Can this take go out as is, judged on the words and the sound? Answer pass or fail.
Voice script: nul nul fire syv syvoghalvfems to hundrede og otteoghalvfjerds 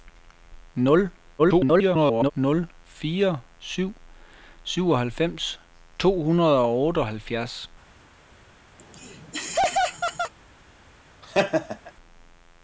fail